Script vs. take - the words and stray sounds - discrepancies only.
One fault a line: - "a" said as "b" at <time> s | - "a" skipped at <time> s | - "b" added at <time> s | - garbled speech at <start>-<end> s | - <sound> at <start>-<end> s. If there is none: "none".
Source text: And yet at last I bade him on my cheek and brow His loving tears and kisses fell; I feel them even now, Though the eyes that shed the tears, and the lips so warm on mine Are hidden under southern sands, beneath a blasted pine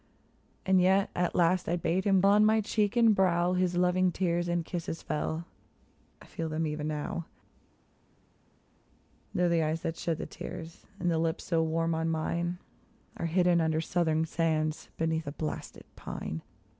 none